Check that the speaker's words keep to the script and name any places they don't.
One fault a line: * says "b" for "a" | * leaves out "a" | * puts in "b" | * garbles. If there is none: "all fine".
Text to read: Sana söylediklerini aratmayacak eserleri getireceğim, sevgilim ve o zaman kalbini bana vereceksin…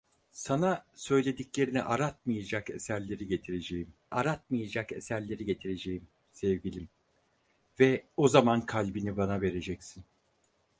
* puts in "aratmayacak eserleri getireceğim"